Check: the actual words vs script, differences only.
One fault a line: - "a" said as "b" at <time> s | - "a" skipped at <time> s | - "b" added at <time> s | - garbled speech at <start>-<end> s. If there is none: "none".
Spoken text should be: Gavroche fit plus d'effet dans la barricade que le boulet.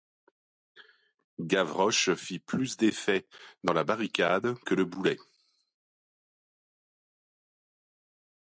none